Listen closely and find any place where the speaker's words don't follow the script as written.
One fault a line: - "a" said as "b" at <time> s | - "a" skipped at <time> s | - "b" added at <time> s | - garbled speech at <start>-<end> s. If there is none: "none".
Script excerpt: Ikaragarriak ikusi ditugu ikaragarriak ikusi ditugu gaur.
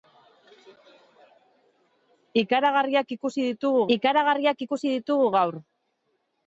none